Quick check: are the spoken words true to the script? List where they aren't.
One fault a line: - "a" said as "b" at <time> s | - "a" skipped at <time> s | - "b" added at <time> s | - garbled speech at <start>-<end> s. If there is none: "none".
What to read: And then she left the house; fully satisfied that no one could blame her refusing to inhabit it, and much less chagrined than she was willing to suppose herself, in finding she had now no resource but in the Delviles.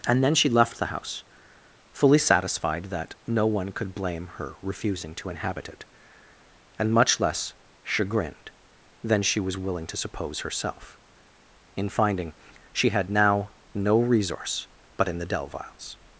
none